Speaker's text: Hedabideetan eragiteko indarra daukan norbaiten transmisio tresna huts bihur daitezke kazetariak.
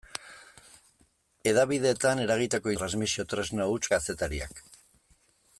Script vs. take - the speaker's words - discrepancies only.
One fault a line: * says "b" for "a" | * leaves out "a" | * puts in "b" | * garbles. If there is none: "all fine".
* leaves out "indarra daukan norbaiten"
* leaves out "bihur daitezke"